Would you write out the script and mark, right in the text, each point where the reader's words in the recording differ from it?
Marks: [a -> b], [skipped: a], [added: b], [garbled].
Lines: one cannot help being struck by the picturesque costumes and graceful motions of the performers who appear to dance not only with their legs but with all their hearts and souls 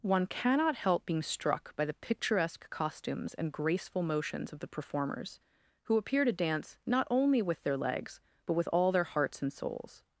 one cannot help being struck by the picturesque costumes and graceful motions of the performers who appear to dance not only with their legs but with all their hearts and souls